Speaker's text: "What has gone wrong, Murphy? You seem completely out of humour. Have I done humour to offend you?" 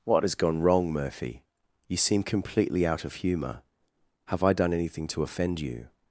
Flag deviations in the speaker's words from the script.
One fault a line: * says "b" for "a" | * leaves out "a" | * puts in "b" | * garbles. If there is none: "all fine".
* says "anything" for "humour"